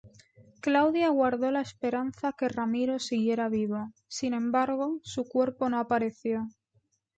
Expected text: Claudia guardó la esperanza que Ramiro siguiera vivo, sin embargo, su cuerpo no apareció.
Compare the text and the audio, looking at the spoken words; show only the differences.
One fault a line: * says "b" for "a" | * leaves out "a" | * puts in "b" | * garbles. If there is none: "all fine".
all fine